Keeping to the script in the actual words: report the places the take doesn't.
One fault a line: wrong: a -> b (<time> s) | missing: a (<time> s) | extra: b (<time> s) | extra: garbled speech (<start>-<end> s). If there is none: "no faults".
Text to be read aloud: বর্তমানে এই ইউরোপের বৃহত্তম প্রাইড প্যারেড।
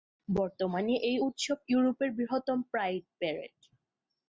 extra: উৎসব (1.3 s)